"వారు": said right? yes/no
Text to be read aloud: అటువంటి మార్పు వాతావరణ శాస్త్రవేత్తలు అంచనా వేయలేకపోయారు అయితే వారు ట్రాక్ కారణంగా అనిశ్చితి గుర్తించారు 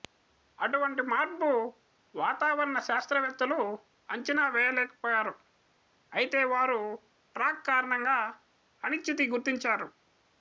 yes